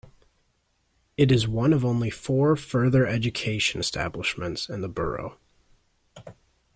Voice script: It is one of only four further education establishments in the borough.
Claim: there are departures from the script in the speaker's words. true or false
false